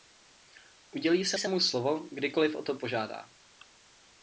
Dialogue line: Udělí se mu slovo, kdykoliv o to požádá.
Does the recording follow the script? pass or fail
fail